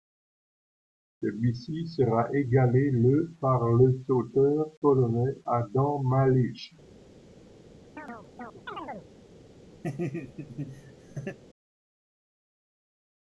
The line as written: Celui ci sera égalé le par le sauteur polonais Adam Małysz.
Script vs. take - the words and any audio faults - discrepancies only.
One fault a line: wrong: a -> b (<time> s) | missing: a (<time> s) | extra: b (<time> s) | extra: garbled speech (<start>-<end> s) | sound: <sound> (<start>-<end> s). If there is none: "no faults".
sound: chirp (8.0-9.1 s)
sound: laugh (9.8-11.4 s)